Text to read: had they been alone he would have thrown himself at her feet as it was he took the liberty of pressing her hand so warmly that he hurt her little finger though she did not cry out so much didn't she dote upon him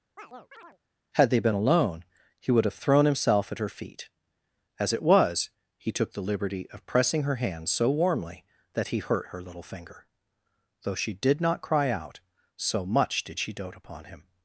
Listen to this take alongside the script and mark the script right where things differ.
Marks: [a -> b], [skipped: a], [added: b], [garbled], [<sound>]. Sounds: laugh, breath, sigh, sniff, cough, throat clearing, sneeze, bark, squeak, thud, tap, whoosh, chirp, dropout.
[chirp] had they been alone he would have thrown himself at her feet as it was he took the liberty of pressing her hand so warmly that he hurt her little finger though she did not cry out so much [didn't -> did] she dote upon him